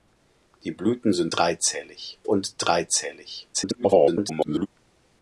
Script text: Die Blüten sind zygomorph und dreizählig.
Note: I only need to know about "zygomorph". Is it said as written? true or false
false